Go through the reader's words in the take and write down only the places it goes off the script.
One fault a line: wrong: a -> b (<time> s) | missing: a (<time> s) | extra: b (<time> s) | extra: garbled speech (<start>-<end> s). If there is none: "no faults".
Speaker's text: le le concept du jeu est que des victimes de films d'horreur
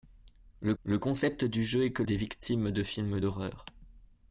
no faults